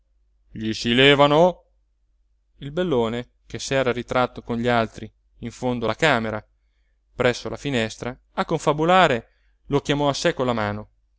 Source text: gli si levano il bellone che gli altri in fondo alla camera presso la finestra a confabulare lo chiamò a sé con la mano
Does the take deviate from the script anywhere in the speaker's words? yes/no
yes